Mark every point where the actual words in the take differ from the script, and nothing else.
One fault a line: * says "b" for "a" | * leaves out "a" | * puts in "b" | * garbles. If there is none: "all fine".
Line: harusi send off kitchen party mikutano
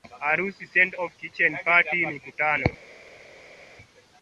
all fine